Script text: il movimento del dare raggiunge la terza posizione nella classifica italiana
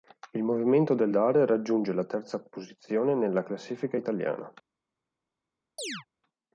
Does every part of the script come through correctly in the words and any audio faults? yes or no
no